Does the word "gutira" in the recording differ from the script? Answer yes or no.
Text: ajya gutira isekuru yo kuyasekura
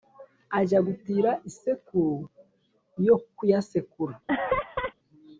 no